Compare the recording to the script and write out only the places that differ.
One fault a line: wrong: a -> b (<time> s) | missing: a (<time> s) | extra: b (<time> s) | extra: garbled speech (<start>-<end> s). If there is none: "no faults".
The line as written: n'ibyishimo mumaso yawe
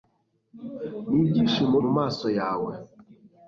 no faults